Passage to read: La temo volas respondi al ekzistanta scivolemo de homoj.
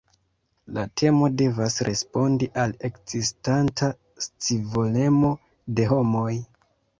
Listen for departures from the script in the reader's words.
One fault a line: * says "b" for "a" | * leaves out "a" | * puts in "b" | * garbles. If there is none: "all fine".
* says "devas" for "volas"